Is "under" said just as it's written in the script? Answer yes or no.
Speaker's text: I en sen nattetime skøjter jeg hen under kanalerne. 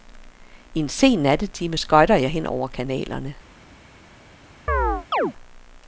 no